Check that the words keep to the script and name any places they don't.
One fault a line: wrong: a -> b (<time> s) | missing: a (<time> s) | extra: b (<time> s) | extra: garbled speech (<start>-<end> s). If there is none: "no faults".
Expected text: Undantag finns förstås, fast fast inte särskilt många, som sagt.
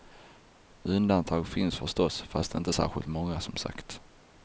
missing: fast (2.5 s)